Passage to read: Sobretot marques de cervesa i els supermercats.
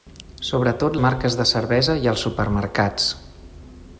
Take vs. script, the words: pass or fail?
pass